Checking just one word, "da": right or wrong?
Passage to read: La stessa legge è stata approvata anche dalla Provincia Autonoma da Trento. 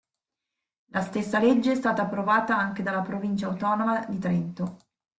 wrong